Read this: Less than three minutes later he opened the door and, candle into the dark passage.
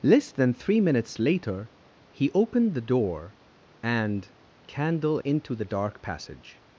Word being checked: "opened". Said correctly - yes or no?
yes